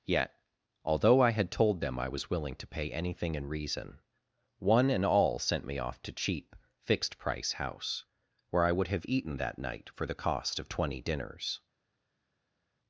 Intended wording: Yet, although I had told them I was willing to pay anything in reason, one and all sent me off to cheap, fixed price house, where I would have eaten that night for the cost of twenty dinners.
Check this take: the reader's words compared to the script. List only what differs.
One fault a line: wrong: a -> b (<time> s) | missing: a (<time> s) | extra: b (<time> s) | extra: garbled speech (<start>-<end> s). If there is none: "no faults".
no faults